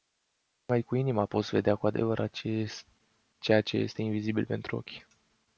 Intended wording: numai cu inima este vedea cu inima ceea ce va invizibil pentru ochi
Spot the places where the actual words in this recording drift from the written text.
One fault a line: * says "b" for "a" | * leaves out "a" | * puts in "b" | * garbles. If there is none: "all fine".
* says "poți" for "este"
* says "adevărat" for "inima"
* says "este" for "va"